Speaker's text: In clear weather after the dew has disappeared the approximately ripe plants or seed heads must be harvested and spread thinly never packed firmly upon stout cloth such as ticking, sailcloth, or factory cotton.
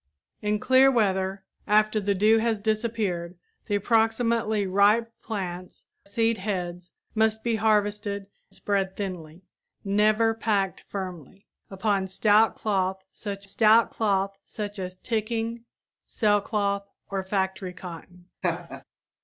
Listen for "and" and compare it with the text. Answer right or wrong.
wrong